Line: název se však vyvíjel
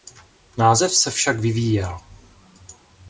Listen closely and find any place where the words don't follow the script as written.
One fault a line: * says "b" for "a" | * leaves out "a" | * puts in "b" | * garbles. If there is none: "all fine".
all fine